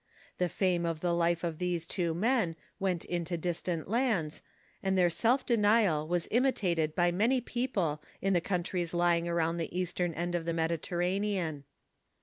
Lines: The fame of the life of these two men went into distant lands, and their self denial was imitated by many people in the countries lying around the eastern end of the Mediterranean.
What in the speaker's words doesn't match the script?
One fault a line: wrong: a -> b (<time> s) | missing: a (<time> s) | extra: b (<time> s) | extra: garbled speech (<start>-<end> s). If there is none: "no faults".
no faults